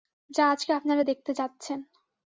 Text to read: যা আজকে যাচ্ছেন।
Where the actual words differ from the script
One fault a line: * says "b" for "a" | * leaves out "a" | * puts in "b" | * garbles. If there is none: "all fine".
* puts in "আপনারা দেখতে"